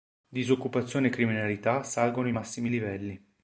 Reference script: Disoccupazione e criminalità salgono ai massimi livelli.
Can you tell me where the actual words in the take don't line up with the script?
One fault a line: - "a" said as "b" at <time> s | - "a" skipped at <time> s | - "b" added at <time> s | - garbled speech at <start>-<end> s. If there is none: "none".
none